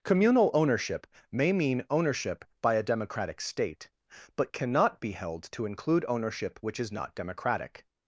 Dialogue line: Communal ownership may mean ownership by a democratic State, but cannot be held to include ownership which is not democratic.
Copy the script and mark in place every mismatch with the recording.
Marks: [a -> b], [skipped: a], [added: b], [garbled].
Communal ownership may mean ownership by a democratic State, but cannot be held to include ownership which is not democratic.